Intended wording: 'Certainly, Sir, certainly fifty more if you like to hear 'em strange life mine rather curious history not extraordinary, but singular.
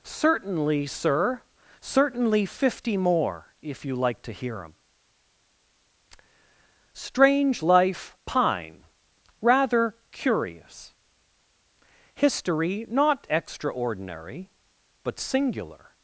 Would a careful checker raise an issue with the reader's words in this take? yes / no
yes